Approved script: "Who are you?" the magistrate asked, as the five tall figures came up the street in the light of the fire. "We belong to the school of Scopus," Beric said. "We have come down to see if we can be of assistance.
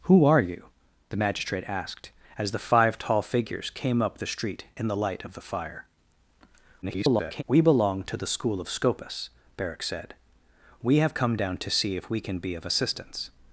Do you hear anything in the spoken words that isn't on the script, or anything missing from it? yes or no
yes